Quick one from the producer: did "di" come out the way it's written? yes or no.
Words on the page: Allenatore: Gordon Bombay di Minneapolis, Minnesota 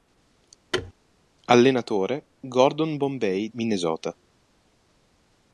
no